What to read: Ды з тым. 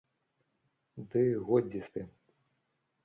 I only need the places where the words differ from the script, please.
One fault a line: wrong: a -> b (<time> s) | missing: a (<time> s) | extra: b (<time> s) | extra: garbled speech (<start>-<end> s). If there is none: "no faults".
extra: годзе (1.5 s)